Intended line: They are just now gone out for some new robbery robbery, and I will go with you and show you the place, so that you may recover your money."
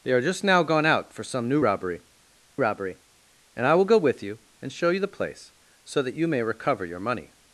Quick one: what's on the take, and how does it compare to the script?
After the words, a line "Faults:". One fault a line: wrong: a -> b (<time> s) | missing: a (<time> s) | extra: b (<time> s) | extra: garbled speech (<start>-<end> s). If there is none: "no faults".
They are just now gone out for some new robbery robbery, and I will go with you and show you the place, so that you may recover your money."
Faults:
no faults